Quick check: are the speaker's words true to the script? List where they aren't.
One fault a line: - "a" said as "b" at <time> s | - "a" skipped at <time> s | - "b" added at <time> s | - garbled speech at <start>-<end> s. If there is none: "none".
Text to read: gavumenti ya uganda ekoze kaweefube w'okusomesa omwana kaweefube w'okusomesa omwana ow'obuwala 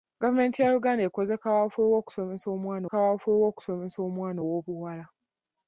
none